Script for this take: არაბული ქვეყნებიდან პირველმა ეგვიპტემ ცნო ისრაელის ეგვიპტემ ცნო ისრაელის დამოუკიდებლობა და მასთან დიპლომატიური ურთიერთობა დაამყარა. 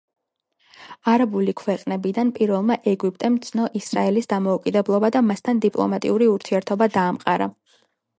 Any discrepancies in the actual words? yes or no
yes